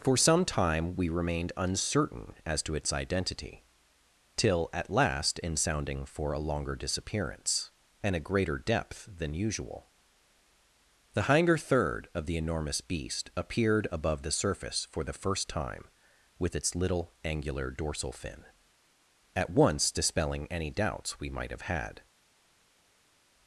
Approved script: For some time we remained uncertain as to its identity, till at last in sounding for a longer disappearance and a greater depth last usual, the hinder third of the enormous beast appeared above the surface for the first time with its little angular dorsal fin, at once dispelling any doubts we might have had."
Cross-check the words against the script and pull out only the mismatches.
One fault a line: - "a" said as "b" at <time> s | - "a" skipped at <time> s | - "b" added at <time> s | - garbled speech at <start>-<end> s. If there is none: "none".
- "last" said as "than" at 9.2 s